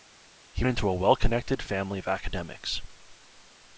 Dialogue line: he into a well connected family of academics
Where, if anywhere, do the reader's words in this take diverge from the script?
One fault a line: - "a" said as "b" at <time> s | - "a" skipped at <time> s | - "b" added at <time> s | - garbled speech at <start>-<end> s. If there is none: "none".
none